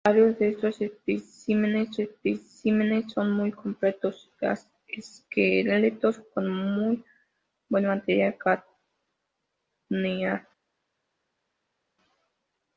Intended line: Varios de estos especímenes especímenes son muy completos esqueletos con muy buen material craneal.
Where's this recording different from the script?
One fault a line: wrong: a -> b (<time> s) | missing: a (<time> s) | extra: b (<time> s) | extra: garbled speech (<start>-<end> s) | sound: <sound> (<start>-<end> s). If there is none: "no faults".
no faults